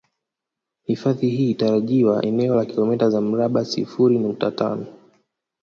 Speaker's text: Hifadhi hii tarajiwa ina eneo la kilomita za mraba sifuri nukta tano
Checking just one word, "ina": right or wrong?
wrong